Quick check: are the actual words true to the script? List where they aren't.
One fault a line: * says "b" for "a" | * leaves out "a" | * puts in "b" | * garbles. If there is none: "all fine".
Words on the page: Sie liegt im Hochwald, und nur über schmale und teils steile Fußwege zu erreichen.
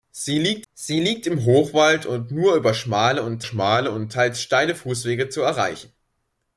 * puts in "sie liegt"
* puts in "schmale und"